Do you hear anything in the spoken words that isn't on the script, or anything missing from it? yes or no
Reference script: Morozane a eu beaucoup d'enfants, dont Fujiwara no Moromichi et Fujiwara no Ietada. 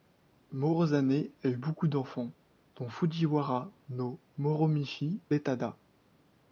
yes